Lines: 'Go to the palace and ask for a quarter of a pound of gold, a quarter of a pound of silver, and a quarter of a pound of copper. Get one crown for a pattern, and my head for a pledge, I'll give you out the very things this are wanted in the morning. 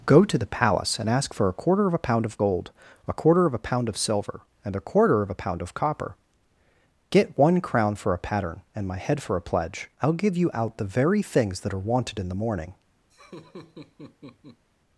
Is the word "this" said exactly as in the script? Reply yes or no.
no